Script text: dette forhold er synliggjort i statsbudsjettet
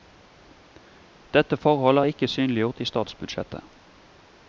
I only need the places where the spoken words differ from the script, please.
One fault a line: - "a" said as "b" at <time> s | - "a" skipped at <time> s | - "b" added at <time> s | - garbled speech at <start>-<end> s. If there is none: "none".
- "ikke" added at 2.0 s